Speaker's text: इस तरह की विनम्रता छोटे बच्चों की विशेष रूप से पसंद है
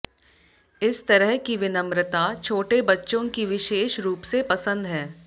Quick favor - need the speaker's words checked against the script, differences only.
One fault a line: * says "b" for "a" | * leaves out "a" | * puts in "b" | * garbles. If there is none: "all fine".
all fine